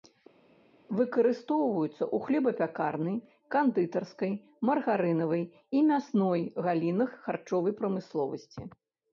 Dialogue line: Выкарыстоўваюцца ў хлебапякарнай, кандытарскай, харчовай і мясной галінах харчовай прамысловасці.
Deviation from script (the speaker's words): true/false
true